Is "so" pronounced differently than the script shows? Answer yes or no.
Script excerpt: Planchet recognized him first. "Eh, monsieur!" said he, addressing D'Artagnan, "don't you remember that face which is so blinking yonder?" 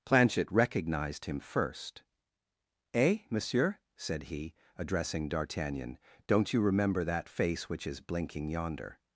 yes